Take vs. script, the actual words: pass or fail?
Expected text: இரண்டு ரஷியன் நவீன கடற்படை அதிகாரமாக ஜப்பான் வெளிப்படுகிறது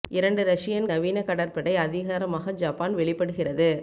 pass